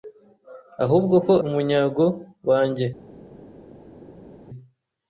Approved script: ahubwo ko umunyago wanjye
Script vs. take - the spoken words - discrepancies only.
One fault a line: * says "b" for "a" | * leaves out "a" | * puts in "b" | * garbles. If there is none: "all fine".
all fine